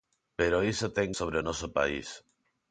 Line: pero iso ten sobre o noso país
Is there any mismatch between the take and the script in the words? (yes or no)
no